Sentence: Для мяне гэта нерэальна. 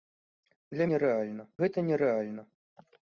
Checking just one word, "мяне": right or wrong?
wrong